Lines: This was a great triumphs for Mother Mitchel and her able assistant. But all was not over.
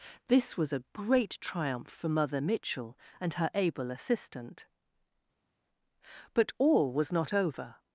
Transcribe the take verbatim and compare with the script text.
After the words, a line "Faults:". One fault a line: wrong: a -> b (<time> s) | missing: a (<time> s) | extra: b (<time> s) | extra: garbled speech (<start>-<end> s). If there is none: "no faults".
This was a great triumph for Mother Mitchel and her able assistant. But all was not over.
Faults:
wrong: triumphs -> triumph (1.4 s)